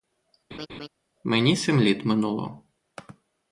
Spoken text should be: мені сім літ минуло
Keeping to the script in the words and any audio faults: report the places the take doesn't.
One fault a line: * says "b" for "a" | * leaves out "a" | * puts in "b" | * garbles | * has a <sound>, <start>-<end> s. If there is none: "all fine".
* has a laugh, 0.5-0.9 s